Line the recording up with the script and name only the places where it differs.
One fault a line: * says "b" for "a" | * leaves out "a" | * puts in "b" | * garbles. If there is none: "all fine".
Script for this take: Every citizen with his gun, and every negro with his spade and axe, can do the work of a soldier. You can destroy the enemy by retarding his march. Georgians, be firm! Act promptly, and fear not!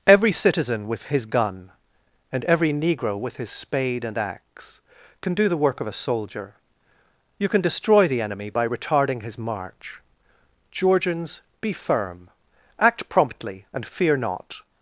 all fine